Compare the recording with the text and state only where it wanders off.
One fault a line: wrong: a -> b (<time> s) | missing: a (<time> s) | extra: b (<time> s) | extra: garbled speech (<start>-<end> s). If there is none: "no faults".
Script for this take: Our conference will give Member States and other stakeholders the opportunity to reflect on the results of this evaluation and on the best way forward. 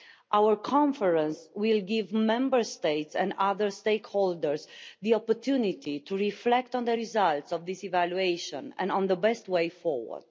no faults